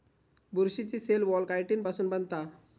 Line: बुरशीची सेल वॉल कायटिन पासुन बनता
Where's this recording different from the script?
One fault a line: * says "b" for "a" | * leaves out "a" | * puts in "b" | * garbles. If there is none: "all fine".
all fine